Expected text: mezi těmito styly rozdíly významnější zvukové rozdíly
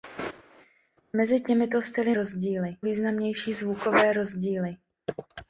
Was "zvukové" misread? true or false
false